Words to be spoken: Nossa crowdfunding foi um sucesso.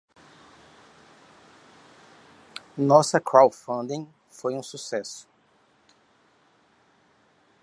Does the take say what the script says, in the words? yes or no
yes